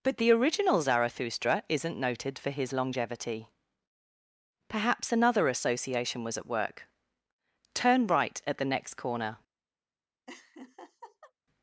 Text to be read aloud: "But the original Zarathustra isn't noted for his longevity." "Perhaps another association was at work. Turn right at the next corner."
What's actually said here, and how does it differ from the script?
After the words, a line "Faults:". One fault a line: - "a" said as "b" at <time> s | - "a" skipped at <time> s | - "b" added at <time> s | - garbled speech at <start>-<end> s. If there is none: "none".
"But the original Zarathustra isn't noted for his longevity." "Perhaps another association was at work. Turn right at the next corner."
Faults:
none